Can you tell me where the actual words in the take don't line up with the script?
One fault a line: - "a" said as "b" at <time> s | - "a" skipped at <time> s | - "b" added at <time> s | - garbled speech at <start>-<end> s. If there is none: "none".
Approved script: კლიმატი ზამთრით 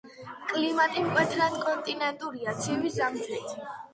- "მკვეთრად კონტინენტურია ცივი" added at 1.1 s